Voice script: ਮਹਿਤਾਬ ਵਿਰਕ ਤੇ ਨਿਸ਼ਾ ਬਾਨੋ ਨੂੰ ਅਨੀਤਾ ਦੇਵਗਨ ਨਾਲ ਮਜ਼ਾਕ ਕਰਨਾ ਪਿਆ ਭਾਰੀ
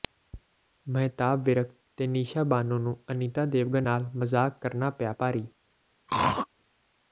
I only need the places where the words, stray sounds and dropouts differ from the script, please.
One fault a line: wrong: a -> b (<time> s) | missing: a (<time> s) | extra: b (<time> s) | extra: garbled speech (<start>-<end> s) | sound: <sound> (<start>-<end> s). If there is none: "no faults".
sound: throat clearing (6.1-6.5 s)